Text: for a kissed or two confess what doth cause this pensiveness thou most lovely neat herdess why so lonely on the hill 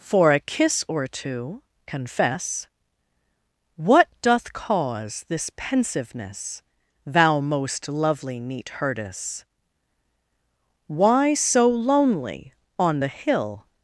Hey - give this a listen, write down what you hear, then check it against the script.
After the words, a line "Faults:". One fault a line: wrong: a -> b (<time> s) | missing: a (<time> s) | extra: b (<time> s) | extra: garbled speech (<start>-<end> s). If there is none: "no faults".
for a kiss or two confess what doth cause this pensiveness thou most lovely neat herdess why so lonely on the hill
Faults:
wrong: kissed -> kiss (0.4 s)